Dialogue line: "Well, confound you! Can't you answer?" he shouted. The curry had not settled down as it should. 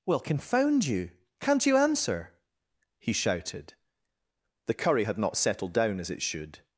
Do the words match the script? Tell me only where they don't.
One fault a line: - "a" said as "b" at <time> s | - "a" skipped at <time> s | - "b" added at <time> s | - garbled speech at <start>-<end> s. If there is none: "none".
none